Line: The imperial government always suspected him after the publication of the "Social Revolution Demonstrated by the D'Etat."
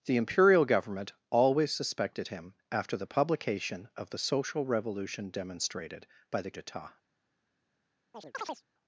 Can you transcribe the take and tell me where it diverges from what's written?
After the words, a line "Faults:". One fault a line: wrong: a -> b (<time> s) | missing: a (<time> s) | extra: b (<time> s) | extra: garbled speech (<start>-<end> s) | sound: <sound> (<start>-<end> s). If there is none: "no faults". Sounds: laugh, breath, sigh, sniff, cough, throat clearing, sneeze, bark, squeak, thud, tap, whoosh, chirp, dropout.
The imperial government always suspected him after the publication of the "Social Revolution Demonstrated by the D'Etat."
Faults:
sound: chirp (8.1-8.6 s)